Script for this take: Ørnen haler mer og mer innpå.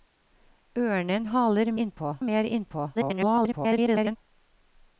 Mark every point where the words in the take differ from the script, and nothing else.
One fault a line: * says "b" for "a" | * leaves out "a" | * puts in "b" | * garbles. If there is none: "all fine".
* says "innpå" for "mer"
* garbles